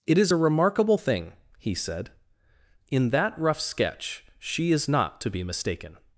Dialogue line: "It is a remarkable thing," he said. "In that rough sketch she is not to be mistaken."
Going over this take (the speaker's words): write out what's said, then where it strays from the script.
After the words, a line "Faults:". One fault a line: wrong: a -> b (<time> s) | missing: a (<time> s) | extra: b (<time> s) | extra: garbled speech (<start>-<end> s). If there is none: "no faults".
"It is a remarkable thing," he said. "In that rough sketch she is not to be mistaken."
Faults:
no faults